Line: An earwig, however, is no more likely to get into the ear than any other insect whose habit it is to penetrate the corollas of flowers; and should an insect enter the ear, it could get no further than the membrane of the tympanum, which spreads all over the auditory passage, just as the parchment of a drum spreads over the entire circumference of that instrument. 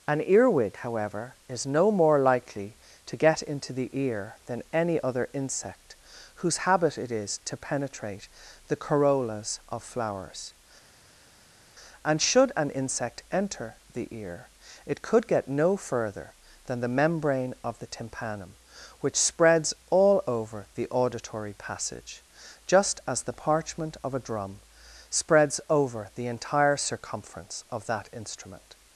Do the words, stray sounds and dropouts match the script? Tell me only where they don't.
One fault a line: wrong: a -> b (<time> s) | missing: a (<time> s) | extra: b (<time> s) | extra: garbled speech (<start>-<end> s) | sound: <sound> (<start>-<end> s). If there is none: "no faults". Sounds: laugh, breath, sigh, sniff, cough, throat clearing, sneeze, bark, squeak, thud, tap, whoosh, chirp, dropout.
no faults